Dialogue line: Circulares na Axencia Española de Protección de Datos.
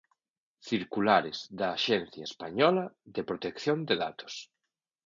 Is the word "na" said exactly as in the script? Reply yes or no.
no